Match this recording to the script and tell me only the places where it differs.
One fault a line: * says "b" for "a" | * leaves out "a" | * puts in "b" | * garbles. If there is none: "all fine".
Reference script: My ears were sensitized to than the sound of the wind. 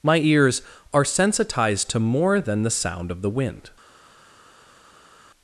* says "are" for "were"
* puts in "more"